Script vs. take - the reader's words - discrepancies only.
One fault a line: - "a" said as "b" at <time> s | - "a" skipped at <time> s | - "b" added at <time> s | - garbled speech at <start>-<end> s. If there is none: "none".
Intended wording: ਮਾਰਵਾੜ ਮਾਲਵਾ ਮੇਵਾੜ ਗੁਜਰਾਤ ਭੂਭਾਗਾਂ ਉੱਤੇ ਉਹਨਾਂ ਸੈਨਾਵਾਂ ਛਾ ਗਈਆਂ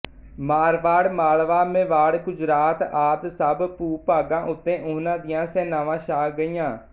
- "ਆਦਿ ਸਭ" added at 2.8 s
- "ਦੀਆਂ" added at 5.2 s